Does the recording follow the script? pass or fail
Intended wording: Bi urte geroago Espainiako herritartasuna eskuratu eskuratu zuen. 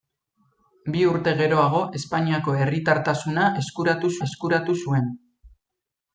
pass